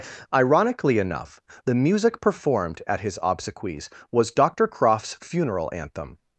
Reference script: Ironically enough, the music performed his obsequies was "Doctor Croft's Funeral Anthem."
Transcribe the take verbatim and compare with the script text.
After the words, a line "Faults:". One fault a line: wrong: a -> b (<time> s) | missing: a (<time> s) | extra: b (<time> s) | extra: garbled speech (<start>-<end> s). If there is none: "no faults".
Ironically enough, the music performed at his obsequies was "Doctor Croft's Funeral Anthem."
Faults:
extra: at (2.9 s)